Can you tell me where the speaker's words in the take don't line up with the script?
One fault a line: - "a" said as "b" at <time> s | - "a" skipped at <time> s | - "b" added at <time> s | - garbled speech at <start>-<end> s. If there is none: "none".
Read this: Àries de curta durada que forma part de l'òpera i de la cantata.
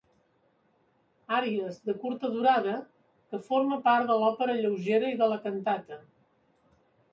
- "lleugera" added at 4.6 s